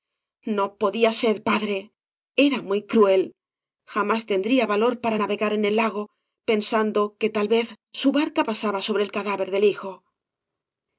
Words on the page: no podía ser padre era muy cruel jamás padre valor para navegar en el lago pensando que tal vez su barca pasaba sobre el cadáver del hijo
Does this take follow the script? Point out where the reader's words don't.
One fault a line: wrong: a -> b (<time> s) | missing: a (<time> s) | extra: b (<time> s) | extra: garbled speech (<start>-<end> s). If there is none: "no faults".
wrong: padre -> tendría (4.3 s)